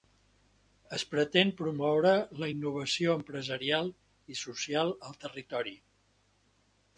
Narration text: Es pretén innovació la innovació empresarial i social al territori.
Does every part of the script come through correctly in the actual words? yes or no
no